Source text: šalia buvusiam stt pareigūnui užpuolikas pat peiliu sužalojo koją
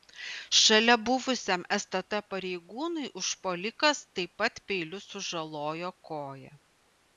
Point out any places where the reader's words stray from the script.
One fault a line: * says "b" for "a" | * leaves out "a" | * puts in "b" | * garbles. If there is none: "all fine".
* puts in "taip"